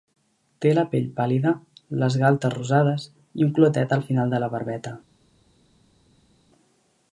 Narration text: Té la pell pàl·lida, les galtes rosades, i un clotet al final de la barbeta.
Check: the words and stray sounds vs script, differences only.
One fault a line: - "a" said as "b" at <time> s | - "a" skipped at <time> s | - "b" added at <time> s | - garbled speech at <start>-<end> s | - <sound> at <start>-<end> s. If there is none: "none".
none